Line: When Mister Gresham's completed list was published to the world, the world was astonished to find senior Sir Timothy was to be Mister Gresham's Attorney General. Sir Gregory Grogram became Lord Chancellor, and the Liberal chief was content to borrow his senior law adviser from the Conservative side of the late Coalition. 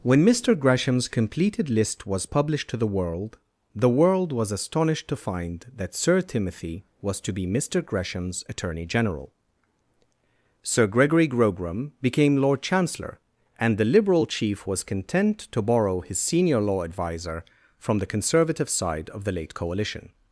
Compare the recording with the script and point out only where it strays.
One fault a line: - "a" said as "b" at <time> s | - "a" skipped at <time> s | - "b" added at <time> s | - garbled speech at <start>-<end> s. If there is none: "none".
- "senior" said as "that" at 5.8 s